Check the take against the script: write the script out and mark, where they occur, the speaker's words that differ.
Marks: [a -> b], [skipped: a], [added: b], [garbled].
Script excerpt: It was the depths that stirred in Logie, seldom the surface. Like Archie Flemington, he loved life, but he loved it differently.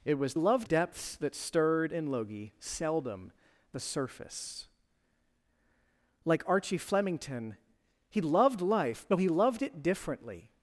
It was [the -> loved] depths that stirred in Logie, seldom the surface. Like Archie Flemington, he loved life, but he loved it differently.